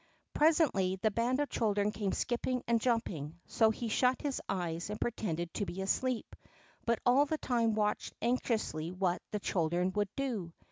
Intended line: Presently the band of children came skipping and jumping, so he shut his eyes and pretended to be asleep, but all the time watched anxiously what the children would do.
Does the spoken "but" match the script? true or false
true